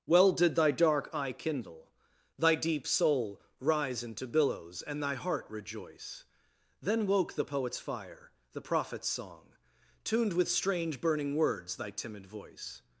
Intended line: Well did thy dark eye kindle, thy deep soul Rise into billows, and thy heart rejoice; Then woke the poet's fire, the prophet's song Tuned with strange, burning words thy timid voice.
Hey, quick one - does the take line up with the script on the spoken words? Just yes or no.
yes